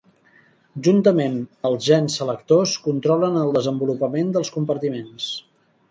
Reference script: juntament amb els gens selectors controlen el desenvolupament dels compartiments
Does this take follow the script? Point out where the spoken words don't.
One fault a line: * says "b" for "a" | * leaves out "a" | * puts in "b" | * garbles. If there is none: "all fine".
* leaves out "amb"